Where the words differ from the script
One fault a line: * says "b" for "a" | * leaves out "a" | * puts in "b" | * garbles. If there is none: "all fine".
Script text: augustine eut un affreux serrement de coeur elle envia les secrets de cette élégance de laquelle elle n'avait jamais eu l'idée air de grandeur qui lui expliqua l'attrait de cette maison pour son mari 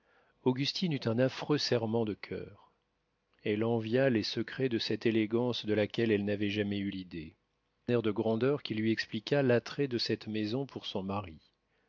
all fine